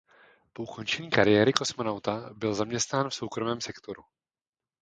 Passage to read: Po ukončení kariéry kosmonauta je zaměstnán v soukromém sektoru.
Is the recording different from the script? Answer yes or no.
yes